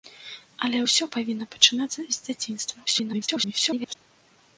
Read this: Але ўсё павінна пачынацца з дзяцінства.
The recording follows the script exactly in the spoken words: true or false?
false